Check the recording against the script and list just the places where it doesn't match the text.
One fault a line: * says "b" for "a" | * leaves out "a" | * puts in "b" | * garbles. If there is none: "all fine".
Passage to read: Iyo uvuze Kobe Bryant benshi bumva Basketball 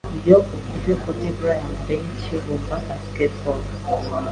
all fine